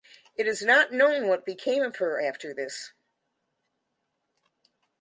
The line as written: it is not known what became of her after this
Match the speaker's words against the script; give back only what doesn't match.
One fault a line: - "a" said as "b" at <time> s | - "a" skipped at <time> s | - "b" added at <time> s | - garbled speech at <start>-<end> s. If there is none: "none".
none